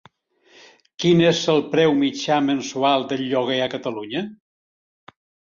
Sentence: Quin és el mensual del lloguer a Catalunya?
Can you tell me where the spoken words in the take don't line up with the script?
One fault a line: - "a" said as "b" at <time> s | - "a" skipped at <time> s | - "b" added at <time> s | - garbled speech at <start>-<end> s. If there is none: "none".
- "preu mitjà" added at 1.8 s